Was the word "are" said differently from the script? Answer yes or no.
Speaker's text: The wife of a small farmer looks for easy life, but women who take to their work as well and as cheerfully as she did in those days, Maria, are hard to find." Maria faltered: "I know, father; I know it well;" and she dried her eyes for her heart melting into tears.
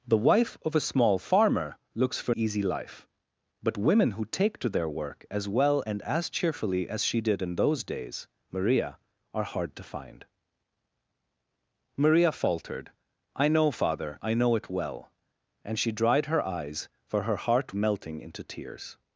no